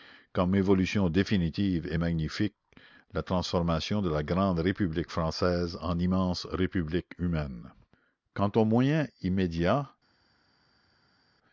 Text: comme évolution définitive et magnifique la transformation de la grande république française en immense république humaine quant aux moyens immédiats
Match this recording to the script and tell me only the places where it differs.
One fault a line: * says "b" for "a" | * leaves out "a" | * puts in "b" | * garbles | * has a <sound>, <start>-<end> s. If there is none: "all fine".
all fine